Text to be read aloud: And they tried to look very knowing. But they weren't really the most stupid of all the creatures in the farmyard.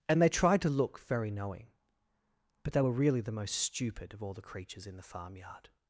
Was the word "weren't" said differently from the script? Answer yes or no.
yes